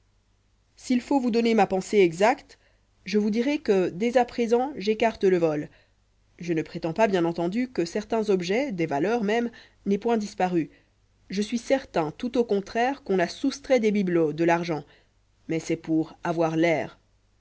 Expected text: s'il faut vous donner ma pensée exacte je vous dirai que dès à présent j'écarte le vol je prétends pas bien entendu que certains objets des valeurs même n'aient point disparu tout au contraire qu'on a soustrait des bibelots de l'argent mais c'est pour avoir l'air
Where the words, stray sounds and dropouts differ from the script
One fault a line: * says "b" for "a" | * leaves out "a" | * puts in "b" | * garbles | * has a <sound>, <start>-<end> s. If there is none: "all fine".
* puts in "ne"
* puts in "je suis certain"